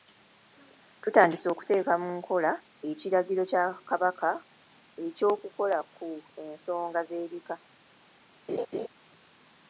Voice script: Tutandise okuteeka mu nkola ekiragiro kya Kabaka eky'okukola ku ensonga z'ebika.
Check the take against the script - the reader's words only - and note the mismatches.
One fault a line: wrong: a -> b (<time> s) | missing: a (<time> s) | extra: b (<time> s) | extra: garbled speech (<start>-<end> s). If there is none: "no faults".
no faults